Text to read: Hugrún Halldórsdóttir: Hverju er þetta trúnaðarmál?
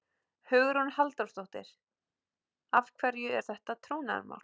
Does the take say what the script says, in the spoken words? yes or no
no